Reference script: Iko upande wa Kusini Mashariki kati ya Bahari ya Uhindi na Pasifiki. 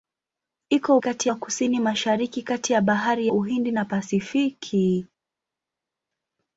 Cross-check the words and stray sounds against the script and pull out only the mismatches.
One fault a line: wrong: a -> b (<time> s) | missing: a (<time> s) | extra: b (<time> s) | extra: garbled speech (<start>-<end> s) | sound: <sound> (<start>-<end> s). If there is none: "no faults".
wrong: upande -> kati (1.0 s)
missing: ya (3.3 s)